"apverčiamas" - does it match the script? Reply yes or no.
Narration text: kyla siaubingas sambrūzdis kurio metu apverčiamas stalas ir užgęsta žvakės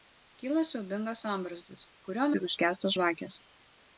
no